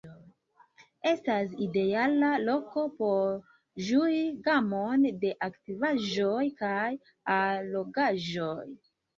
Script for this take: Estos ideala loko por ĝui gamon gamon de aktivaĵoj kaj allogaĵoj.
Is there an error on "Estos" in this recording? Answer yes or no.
yes